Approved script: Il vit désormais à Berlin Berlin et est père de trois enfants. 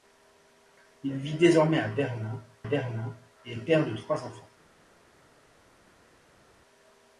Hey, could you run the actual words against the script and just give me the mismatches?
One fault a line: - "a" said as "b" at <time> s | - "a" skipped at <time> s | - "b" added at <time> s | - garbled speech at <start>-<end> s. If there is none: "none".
none